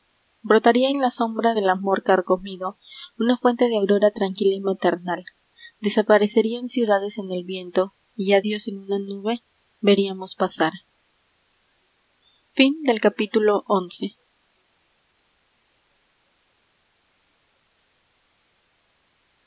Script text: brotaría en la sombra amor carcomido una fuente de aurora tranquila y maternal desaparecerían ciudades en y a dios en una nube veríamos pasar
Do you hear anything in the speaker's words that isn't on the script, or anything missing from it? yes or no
yes